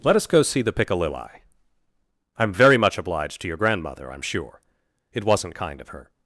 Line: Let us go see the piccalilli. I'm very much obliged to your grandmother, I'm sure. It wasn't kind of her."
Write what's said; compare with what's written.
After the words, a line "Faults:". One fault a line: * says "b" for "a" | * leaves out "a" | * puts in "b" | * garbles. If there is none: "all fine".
Let us go see the piccalilli. I'm very much obliged to your grandmother, I'm sure. It wasn't kind of her."
Faults:
all fine